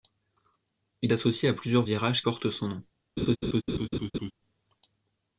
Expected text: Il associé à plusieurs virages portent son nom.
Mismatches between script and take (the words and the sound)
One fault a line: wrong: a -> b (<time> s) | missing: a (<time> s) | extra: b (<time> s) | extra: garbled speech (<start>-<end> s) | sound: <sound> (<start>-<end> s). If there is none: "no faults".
sound: laugh (3.2-4.3 s)